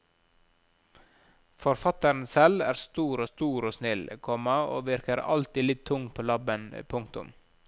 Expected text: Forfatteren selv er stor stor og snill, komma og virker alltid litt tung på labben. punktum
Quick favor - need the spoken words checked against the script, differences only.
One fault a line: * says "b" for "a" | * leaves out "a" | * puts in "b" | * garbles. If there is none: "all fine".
all fine